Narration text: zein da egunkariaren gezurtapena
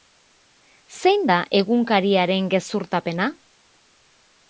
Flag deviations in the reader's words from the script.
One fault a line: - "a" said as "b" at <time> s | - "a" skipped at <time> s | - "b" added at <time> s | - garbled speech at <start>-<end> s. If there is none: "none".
none